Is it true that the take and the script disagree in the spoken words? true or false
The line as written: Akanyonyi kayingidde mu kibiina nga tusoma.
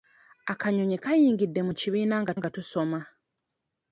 true